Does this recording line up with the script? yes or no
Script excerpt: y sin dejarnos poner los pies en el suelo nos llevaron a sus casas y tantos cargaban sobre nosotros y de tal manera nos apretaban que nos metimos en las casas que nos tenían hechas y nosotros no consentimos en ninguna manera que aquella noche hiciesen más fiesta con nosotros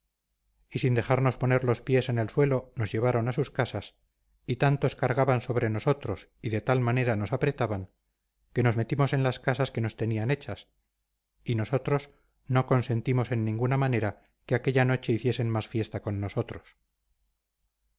yes